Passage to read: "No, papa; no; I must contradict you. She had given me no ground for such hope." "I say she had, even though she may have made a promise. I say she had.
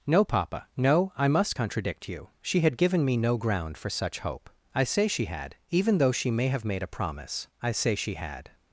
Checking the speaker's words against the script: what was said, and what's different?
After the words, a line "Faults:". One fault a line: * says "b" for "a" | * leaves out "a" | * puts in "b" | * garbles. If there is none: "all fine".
"No, papa; no; I must contradict you. She had given me no ground for such hope." "I say she had, even though she may have made a promise. I say she had.
Faults:
all fine